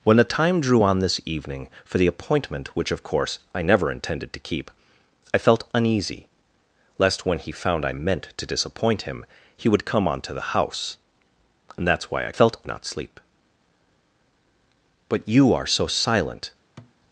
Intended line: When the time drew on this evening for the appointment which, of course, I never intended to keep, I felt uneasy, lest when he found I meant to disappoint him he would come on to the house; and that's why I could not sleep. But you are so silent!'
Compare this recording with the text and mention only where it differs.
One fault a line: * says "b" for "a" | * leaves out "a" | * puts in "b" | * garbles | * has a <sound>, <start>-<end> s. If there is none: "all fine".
* says "felt" for "could"
* has a thud, 16.8-16.9 s